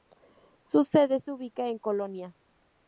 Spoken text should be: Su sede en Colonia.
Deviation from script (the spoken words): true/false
true